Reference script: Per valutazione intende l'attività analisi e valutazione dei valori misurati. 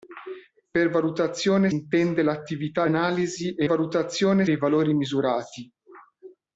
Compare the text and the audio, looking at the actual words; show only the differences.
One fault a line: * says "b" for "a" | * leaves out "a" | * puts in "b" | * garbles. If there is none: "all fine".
all fine